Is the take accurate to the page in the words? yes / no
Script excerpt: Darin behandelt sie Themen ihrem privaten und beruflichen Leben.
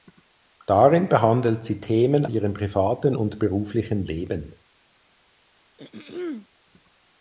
yes